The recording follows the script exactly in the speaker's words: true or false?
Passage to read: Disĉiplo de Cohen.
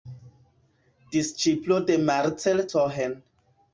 false